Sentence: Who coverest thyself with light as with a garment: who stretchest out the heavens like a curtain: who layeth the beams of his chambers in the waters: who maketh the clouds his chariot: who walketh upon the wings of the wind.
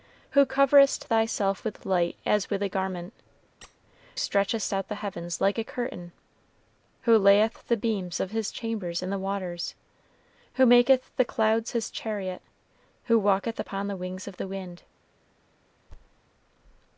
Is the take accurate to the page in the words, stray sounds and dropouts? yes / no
no